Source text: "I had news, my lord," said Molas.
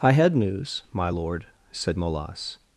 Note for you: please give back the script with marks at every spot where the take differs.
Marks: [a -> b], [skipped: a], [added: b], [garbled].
"I had news, my lord," said Molas.